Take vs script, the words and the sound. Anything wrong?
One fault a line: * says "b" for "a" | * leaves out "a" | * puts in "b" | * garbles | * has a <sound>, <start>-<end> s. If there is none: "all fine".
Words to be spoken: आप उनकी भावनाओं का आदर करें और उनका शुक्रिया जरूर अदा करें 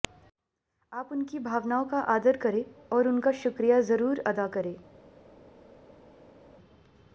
all fine